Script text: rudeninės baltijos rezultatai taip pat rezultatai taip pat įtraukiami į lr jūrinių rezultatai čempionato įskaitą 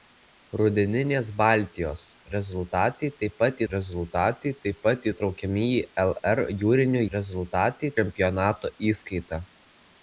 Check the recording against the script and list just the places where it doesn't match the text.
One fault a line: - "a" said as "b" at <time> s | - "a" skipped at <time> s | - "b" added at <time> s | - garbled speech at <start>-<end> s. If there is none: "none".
none